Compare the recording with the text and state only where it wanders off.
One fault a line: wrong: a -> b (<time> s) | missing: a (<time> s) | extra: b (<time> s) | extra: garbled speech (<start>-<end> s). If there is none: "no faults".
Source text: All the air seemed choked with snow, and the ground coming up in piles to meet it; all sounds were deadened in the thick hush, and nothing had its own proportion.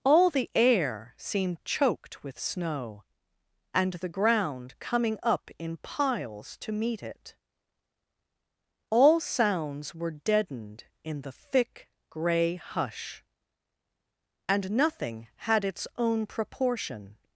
extra: gray (12.1 s)